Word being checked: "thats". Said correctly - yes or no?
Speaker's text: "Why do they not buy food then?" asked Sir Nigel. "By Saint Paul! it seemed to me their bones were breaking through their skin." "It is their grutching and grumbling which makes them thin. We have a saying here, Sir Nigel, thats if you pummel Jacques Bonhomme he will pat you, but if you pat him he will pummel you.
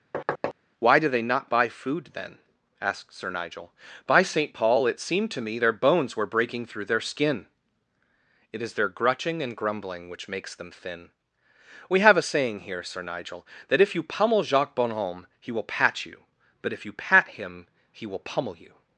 no